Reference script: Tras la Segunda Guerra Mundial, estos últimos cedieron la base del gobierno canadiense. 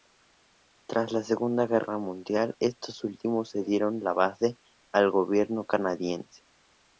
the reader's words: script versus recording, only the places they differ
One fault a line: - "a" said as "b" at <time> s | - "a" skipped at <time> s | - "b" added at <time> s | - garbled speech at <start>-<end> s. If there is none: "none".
- "del" said as "al" at 4.9 s